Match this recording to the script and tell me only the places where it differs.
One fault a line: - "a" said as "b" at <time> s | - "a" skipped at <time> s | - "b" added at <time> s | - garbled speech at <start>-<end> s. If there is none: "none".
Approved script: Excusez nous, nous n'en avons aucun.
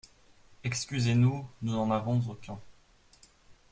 none